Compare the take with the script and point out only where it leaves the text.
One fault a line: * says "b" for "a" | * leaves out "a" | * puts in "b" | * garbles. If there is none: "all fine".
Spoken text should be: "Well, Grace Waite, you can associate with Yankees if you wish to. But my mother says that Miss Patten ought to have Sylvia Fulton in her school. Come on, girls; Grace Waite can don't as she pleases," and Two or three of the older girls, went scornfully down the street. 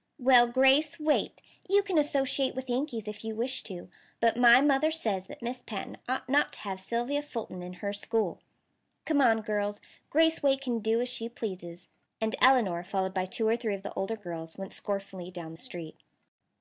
* puts in "not"
* says "do" for "don't"
* puts in "Elinor followed by"